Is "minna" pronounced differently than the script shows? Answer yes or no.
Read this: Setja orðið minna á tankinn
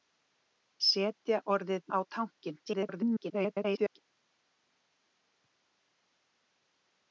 yes